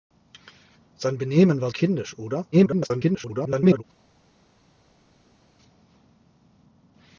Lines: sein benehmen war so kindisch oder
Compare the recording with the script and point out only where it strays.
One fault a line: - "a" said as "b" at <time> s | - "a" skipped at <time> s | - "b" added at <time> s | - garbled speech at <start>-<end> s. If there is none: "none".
- "so" skipped at 1.7 s
- garbled speech at 2.5-3.8 s